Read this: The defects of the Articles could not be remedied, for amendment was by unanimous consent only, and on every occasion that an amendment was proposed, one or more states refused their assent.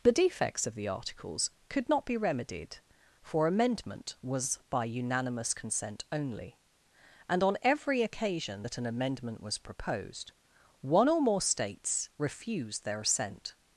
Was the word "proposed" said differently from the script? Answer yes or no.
no